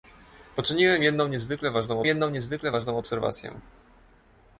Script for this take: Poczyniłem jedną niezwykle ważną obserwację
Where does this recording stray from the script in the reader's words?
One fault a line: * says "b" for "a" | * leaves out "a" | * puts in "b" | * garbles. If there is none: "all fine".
* puts in "jedną niezwykle ważną"